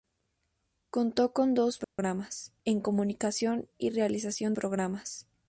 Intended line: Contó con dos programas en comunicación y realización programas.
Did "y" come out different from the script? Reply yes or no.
no